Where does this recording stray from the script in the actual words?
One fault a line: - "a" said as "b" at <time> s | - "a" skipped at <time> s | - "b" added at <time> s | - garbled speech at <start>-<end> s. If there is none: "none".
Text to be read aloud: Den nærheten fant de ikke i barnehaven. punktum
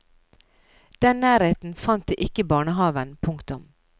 none